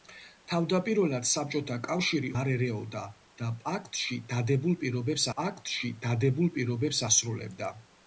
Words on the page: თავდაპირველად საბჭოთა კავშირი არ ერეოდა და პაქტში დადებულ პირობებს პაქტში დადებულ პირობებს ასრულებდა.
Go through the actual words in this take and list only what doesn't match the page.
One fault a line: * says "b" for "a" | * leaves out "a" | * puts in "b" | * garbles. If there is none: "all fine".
all fine